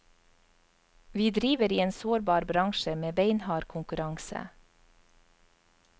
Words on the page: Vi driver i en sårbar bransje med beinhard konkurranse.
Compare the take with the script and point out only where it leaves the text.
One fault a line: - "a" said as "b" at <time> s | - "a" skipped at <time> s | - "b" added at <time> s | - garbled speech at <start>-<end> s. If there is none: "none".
none